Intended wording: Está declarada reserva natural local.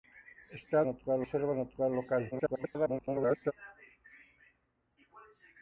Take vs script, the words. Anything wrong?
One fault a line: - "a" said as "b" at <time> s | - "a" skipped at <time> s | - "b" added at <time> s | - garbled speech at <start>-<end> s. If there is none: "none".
- "declarada" said as "natural" at 0.8 s
- garbled speech at 2.3-3.5 s